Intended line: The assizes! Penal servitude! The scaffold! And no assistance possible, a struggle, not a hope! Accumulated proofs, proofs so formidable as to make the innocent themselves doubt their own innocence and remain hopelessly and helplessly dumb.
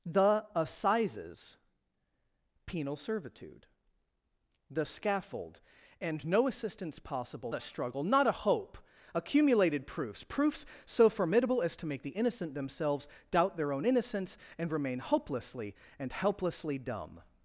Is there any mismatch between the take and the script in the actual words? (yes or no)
no